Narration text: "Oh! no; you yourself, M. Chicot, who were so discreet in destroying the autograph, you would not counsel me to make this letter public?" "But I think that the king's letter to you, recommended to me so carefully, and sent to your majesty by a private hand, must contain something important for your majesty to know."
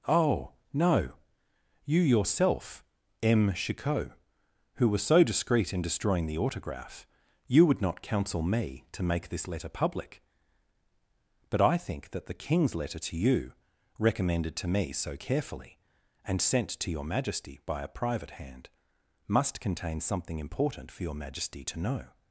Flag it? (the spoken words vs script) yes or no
no